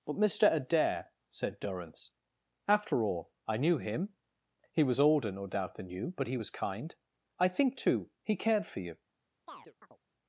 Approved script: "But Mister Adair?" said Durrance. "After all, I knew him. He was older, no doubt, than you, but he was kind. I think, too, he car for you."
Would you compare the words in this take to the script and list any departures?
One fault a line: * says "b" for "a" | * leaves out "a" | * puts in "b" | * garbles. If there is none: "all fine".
* says "cared" for "car"